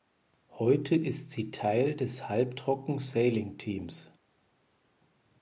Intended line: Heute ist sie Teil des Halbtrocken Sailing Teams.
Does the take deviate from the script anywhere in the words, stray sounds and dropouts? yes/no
no